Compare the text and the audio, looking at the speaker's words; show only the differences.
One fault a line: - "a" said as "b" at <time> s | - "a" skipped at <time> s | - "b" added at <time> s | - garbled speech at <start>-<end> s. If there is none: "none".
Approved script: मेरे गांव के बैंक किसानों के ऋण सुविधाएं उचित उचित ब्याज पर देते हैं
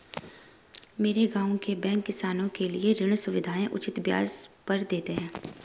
- "लिए" added at 2.7 s
- "उचित" skipped at 4.0 s